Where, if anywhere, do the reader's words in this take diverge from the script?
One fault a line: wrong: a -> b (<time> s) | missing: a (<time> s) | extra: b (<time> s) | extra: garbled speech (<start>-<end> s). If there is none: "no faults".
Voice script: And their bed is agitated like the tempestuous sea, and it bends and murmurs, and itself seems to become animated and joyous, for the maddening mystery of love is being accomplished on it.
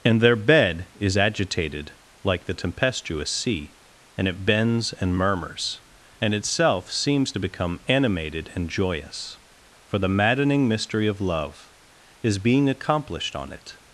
no faults